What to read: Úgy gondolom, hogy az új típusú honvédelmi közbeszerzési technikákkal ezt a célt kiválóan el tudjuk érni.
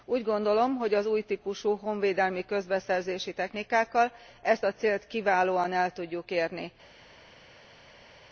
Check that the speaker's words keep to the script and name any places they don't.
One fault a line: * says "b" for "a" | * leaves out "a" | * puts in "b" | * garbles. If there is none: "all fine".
all fine